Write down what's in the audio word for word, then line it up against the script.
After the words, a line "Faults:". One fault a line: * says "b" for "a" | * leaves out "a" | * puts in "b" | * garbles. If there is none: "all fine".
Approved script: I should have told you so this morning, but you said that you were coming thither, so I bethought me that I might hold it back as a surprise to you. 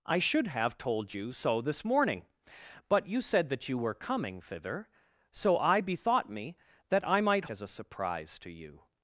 I should have told you so this morning, but you said that you were coming thither, so I bethought me that I might as a surprise to you.
Faults:
* leaves out "hold it back"